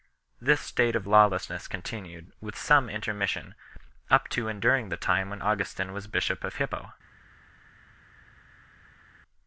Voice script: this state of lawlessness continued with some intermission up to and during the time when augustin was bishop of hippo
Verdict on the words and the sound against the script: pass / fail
pass